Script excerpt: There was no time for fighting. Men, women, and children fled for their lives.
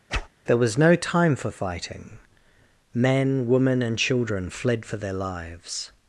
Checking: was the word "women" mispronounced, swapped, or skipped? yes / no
no